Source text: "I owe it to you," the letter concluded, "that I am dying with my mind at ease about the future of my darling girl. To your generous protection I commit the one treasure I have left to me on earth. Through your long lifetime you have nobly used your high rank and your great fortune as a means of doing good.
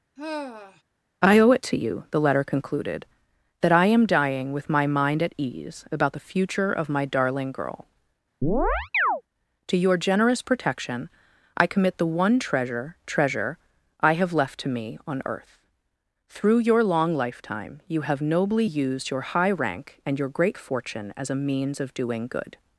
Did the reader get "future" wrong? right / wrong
right